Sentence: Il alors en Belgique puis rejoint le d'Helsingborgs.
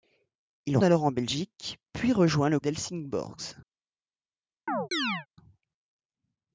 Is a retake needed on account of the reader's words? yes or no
no